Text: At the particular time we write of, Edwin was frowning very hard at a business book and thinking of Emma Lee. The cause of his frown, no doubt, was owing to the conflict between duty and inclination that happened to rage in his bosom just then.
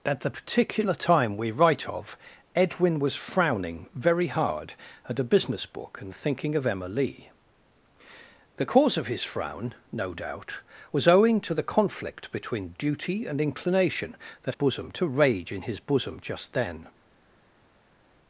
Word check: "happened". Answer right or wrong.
wrong